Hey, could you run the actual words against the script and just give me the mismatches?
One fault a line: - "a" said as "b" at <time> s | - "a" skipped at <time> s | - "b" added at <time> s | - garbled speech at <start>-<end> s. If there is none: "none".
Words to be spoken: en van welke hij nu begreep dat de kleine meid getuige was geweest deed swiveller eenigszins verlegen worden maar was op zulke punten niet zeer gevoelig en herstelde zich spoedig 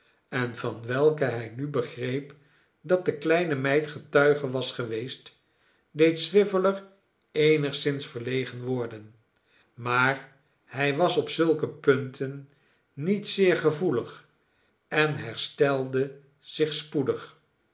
- "hij" added at 10.7 s